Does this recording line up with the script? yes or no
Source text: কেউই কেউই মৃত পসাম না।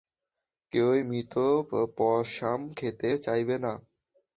no